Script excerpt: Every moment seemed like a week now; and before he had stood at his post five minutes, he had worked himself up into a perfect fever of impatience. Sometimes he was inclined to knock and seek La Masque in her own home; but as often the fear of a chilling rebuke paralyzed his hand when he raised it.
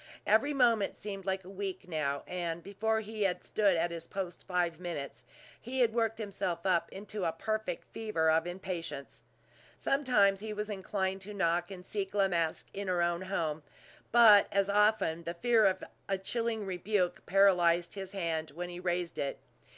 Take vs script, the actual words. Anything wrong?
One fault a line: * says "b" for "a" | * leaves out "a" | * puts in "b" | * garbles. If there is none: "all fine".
all fine